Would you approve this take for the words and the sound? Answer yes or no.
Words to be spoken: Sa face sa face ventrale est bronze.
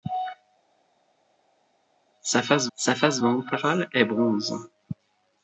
yes